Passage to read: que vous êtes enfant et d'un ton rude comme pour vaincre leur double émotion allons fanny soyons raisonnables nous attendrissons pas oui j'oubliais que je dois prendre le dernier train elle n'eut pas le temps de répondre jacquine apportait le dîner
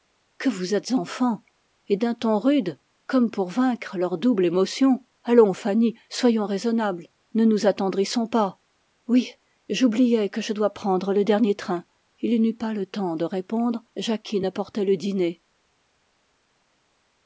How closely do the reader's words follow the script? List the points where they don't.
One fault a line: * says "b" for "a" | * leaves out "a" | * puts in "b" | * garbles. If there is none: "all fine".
* puts in "ne"
* says "il" for "elle"